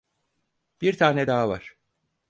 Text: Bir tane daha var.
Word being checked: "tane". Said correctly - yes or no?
yes